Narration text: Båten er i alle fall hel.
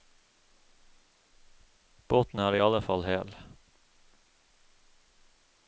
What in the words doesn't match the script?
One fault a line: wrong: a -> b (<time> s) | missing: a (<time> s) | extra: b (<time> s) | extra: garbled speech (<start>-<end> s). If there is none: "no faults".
no faults